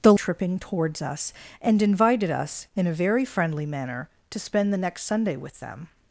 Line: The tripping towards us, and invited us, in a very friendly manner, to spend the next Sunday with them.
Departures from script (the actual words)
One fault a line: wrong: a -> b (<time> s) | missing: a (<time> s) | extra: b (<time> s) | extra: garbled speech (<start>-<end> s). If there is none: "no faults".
no faults